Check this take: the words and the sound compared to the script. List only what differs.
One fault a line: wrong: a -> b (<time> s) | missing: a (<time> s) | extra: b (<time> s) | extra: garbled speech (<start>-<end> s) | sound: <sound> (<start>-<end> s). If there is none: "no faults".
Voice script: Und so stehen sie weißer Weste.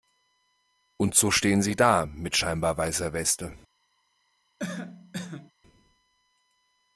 extra: da mit scheinbar (1.7 s)
sound: cough (4.6-5.5 s)